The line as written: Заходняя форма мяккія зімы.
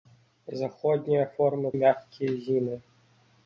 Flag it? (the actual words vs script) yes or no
no